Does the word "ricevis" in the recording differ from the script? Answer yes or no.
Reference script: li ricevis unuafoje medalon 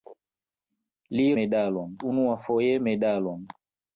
yes